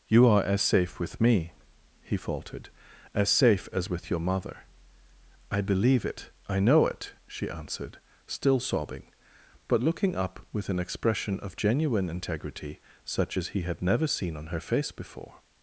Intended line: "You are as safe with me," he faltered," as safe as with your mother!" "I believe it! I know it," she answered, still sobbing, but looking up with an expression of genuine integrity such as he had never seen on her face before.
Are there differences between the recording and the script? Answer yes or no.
no